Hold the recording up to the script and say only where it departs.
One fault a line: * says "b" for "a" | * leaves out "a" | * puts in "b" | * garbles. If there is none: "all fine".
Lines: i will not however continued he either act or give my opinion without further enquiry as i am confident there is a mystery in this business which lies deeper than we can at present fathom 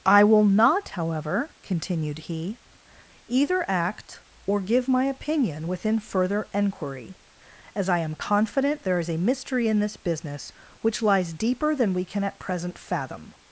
* says "within" for "without"